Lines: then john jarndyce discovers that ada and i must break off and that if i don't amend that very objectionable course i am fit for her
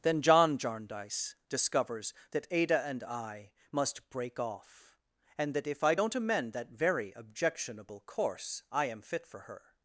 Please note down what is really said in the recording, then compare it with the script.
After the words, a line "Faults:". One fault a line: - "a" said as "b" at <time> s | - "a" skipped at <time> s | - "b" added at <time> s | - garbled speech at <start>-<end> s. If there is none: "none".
then john jarndyce discovers that ada and i must break off and that if i don't amend that very objectionable course i am fit for her
Faults:
none